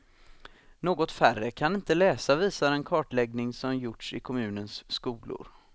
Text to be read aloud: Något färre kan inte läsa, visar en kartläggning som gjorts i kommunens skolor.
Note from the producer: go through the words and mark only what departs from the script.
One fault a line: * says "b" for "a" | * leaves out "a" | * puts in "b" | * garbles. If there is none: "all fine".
all fine